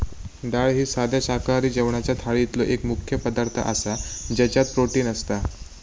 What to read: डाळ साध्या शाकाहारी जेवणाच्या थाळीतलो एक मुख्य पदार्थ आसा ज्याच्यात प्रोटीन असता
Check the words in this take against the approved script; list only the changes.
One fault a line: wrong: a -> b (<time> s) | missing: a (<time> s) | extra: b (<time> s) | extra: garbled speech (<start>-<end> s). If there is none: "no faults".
extra: ही (0.7 s)